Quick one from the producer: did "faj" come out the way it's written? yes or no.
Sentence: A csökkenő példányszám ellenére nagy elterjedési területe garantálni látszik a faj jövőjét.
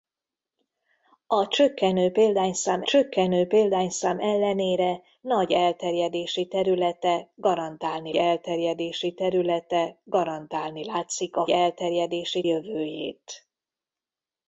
no